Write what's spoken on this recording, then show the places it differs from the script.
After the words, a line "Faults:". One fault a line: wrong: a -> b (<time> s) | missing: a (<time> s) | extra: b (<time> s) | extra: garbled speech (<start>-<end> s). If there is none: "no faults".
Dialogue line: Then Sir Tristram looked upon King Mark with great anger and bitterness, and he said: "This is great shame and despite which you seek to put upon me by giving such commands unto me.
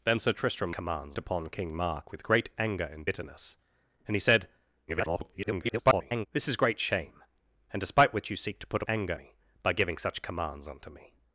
Then Sir Tristram commands upon King Mark with great anger and bitterness, and he said: [garbled] "This is great shame and despite which you seek to put anger me by giving such commands unto me.
Faults:
wrong: looked -> commands (0.7 s)
extra: garbled speech (4.9-6.3 s)
wrong: upon -> anger (8.9 s)